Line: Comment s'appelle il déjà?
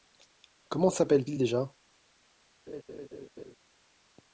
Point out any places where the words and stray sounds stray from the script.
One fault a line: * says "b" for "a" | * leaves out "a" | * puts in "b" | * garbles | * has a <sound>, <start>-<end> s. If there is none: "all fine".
* has a laugh, 2.7-3.6 s